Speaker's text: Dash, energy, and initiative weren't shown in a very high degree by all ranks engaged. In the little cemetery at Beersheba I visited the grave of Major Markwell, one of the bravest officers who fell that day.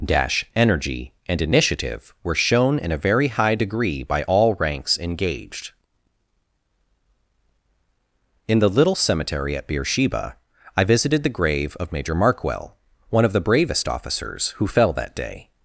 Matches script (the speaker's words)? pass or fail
fail